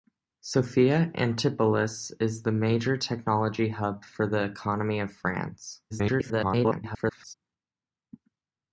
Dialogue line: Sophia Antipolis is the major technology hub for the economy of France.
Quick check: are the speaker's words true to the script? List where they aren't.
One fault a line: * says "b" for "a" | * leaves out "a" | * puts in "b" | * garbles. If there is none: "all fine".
* garbles